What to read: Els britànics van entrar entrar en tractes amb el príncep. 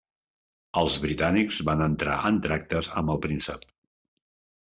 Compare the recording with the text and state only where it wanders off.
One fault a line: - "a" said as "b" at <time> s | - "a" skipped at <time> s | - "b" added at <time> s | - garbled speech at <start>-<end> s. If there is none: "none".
- "entrar" skipped at 2.2 s